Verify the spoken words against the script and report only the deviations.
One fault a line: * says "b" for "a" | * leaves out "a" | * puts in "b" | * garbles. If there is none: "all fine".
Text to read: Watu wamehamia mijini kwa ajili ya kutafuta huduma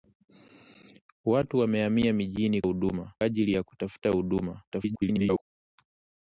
* says "huduma" for "kwa"
* garbles